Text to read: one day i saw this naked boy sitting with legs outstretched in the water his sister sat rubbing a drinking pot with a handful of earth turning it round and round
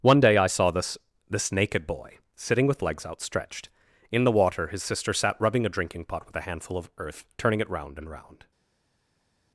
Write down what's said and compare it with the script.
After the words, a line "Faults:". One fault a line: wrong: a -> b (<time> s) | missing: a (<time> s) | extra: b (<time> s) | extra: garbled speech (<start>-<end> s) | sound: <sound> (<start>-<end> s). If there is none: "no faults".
one day i saw this this naked boy sitting with legs outstretched in the water his sister sat rubbing a drinking pot with a handful of earth turning it round and round
Faults:
extra: this (1.3 s)